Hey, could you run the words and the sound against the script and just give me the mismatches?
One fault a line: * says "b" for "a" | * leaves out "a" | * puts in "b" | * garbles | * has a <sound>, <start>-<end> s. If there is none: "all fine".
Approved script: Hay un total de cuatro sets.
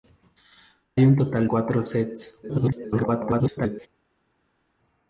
* leaves out "de"
* garbles